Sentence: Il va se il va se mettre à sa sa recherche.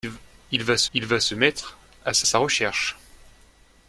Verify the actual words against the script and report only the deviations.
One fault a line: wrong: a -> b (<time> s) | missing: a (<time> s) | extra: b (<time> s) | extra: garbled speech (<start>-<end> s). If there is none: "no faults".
no faults